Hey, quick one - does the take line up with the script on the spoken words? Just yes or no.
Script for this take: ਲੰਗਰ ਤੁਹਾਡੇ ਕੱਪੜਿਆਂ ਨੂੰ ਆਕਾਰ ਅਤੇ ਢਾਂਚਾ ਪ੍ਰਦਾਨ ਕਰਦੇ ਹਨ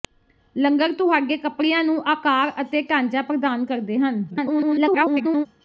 no